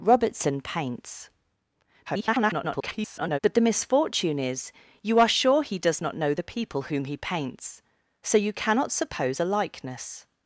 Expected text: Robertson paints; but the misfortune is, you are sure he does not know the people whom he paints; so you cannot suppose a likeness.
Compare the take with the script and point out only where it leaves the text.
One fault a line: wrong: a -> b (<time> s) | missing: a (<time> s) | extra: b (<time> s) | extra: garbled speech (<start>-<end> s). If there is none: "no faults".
extra: garbled speech (2.1-3.4 s)